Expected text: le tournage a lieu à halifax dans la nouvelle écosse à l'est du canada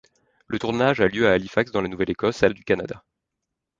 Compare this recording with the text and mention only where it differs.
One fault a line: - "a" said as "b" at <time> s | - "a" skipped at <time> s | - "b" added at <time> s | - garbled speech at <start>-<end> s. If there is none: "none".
- "l'est" skipped at 2.5 s